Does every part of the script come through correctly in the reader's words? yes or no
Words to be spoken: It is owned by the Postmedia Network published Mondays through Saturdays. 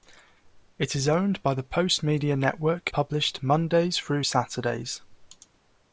yes